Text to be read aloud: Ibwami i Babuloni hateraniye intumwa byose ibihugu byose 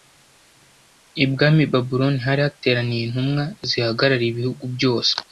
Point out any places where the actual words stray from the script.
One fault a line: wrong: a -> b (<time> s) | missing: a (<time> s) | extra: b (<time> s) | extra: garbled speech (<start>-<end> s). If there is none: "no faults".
extra: hari (2.2 s)
wrong: byose -> zihagarariye (3.7 s)